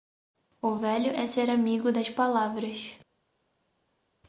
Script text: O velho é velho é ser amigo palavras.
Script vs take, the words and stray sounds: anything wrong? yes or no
yes